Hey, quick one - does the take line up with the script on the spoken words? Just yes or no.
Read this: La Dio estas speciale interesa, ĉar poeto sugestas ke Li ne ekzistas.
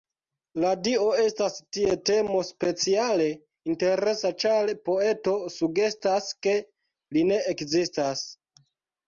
no